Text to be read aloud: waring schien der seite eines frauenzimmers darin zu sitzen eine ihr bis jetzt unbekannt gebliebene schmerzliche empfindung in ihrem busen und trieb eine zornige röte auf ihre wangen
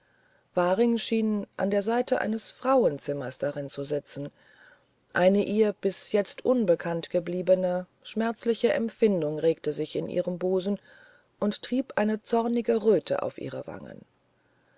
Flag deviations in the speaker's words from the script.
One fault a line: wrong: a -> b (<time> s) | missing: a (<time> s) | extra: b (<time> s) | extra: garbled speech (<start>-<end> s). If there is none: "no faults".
extra: an (1.6 s)
extra: regte sich (9.4 s)